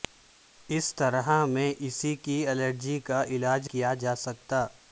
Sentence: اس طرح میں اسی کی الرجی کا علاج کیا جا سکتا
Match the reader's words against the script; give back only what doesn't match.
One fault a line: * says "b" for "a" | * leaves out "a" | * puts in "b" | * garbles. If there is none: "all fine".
all fine